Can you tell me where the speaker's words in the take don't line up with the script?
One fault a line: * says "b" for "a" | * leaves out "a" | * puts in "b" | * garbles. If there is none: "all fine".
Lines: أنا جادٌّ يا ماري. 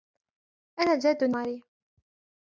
* leaves out "يا"